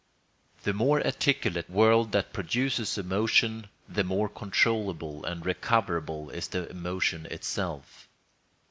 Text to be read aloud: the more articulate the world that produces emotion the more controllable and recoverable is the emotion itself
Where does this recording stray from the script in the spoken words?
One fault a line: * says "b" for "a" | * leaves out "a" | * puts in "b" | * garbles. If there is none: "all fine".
* leaves out "the"